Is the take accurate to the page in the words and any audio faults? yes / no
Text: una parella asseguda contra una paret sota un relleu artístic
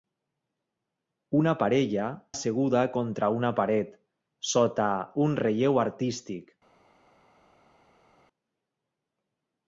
yes